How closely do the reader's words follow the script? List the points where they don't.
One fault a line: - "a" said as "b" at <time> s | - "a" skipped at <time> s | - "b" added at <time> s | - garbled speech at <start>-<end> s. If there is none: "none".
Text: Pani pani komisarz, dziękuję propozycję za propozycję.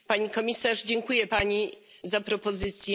- "pani" skipped at 0.3 s
- "propozycję" said as "pani" at 1.2 s